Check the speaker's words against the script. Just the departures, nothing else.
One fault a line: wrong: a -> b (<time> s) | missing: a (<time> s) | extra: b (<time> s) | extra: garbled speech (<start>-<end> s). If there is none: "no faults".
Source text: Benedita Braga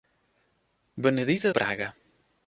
no faults